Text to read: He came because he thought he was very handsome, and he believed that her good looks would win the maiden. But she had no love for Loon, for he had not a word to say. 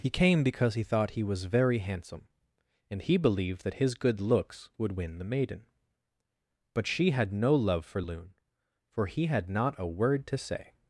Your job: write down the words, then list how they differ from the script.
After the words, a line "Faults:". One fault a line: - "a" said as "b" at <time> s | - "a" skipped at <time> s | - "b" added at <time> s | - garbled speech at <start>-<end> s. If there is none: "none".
He came because he thought he was very handsome, and he believed that his good looks would win the maiden. But she had no love for Loon, for he had not a word to say.
Faults:
- "her" said as "his" at 3.8 s